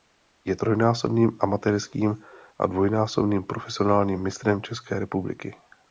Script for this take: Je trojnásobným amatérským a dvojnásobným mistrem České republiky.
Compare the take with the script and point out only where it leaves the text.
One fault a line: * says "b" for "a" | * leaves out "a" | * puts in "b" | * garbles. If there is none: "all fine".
* puts in "profesionálním"